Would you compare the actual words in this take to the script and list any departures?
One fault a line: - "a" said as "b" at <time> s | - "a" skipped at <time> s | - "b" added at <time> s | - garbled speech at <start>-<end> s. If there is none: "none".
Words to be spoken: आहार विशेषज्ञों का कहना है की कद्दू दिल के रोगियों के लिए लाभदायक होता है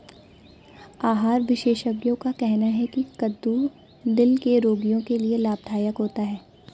none